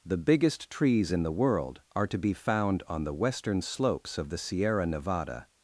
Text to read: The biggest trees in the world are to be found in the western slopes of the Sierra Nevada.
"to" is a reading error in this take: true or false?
false